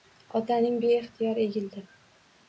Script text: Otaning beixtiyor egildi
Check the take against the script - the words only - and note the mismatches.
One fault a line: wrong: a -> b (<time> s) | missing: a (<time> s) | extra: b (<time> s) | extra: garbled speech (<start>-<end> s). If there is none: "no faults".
no faults